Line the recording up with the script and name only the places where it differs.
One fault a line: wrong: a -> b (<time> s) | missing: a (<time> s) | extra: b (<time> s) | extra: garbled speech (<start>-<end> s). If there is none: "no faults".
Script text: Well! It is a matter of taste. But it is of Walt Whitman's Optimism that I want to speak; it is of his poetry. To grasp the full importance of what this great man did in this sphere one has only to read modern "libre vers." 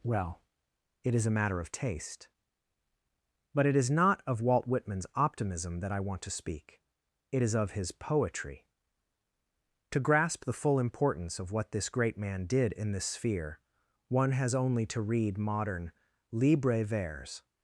extra: not (3.9 s)